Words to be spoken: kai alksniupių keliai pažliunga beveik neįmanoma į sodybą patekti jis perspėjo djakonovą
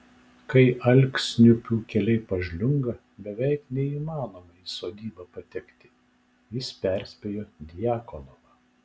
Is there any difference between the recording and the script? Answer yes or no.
no